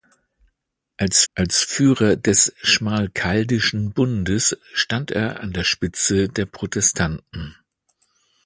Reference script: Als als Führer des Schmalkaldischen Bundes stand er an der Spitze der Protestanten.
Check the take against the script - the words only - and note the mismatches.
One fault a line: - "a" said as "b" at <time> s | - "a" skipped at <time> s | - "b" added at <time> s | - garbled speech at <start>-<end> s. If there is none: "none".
none